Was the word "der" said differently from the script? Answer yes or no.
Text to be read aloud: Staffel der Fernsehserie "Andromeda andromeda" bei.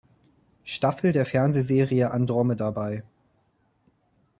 no